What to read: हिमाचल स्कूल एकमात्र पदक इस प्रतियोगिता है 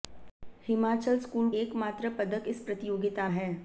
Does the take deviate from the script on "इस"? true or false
false